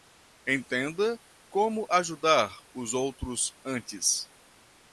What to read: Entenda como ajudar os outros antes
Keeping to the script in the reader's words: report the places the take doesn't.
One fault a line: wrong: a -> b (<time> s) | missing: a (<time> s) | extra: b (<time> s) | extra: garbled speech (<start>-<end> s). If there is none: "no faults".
no faults